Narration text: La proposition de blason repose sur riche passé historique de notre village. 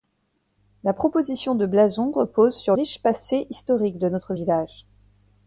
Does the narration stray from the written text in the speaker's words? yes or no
no